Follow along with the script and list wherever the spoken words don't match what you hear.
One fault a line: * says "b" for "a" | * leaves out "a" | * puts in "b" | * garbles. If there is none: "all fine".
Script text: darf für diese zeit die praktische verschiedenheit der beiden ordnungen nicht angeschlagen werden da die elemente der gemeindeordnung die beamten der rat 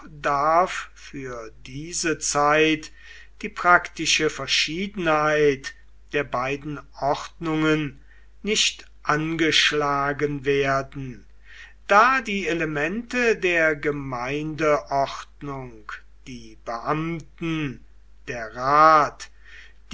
all fine